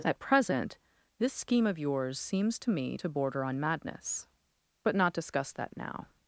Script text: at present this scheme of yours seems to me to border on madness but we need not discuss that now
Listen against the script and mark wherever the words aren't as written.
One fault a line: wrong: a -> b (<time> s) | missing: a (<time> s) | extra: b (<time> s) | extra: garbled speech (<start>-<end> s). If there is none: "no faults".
missing: we need (4.9 s)